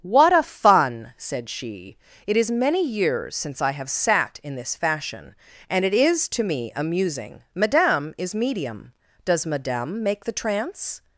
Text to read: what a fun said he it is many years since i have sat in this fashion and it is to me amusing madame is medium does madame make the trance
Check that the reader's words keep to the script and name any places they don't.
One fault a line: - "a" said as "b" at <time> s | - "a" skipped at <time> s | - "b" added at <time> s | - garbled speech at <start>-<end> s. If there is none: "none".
- "he" said as "she" at 1.5 s